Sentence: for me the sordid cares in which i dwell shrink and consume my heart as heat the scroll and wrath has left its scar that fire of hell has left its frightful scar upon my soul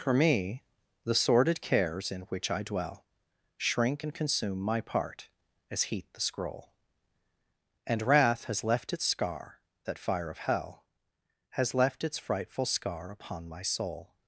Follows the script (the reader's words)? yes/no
no